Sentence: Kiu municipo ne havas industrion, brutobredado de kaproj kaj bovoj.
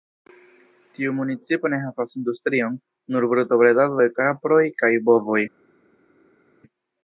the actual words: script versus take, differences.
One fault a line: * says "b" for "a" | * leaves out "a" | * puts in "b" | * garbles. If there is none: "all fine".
* says "Tiu" for "Kiu"
* puts in "nur"